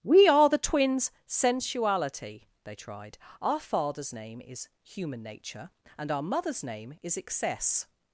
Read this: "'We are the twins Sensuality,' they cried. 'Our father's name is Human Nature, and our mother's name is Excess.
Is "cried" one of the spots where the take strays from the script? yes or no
yes